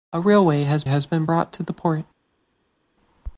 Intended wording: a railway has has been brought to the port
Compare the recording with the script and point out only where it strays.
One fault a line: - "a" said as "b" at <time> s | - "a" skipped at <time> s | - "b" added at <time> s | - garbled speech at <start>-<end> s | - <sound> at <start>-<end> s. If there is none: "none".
none